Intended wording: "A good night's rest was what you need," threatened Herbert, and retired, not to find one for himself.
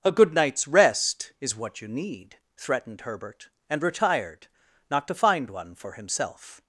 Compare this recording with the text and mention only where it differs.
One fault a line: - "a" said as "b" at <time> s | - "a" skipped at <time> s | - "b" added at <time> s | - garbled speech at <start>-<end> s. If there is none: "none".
- "was" said as "is" at 1.4 s